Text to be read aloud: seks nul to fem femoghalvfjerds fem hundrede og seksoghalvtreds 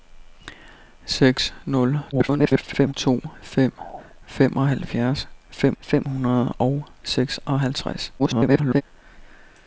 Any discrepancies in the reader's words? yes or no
yes